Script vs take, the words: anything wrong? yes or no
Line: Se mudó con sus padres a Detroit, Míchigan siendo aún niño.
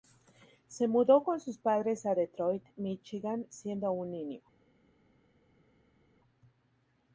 no